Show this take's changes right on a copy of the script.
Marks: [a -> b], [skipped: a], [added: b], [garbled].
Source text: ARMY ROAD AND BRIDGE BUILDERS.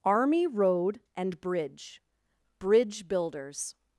ARMY ROAD AND BRIDGE [added: BRIDGE] BUILDERS.